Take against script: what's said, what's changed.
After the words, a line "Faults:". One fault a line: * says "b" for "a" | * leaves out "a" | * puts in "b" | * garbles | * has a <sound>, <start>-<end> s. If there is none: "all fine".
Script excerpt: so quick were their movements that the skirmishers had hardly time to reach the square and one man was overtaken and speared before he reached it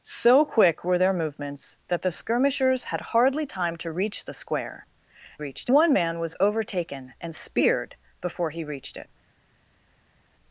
so quick were their movements that the skirmishers had hardly time to reach the square reached one man was overtaken and speared before he reached it
Faults:
* says "reached" for "and"